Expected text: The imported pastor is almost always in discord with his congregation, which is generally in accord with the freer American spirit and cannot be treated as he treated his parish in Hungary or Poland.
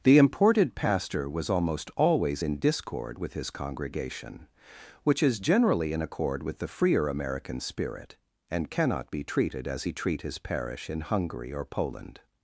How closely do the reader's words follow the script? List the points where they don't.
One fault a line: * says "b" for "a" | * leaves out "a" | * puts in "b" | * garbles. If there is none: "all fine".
* says "was" for "is"
* says "treat" for "treated"